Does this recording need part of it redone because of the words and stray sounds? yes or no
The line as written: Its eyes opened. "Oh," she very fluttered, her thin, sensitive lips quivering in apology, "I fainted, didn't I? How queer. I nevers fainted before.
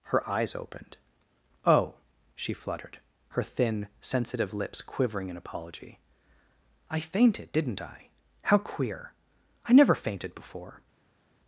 yes